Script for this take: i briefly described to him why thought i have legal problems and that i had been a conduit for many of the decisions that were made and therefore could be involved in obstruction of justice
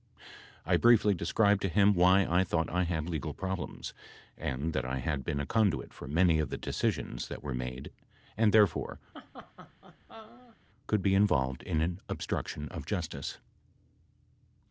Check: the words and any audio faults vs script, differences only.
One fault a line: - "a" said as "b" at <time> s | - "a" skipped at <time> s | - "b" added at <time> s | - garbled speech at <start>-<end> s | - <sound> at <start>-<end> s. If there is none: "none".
- "i" added at 2.2 s
- "have" said as "had" at 2.9 s
- laugh at 9.1-10.6 s
- "an" added at 11.8 s